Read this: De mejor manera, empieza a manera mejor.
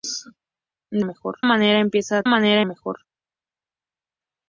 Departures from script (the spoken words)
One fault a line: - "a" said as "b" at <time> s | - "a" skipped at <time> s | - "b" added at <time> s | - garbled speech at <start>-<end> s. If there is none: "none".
none